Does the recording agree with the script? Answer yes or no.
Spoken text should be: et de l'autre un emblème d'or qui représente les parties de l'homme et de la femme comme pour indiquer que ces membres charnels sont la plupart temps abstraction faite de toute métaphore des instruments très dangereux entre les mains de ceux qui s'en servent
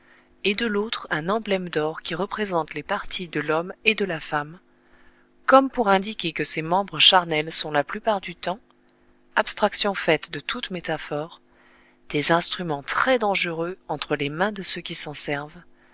no